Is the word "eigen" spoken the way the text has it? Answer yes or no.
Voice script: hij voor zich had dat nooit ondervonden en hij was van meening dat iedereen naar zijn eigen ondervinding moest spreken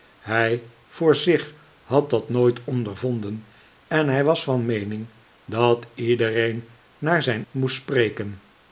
no